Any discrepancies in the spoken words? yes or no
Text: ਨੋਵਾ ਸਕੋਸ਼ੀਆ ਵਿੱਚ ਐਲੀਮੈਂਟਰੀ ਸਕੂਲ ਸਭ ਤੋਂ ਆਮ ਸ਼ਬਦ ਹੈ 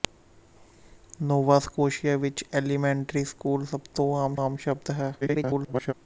yes